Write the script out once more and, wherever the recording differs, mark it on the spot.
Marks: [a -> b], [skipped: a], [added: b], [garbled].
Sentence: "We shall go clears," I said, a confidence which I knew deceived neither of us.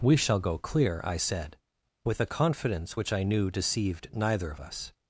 "We shall go [clears," -> clear] I said, [added: with] a confidence which I knew deceived neither of us.